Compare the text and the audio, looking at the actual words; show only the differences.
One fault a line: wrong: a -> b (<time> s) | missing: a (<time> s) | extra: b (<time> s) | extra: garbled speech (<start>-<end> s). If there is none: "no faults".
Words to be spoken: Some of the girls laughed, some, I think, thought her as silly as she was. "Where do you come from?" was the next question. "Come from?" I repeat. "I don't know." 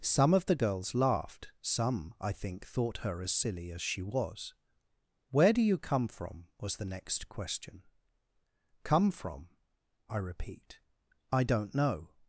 no faults